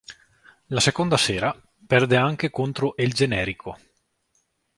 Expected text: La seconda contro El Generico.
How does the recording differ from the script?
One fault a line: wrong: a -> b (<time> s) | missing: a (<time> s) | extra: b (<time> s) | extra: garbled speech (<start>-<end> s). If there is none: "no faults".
extra: sera perde anche (1.2 s)